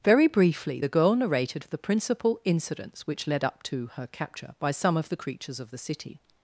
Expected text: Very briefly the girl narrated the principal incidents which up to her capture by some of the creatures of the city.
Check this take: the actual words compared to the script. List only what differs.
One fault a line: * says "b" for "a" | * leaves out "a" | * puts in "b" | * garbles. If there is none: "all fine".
* puts in "led"